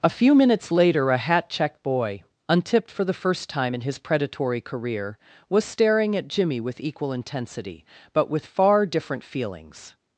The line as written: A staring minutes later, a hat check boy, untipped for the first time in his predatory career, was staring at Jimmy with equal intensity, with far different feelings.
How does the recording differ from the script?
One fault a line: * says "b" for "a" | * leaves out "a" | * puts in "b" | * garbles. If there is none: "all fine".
* says "few" for "staring"
* puts in "but"